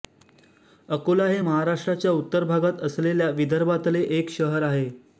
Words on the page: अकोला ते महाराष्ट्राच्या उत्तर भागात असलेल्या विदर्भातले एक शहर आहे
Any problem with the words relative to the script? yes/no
yes